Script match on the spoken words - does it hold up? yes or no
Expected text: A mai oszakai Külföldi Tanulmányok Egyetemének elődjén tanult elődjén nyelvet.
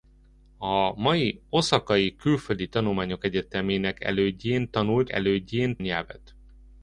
yes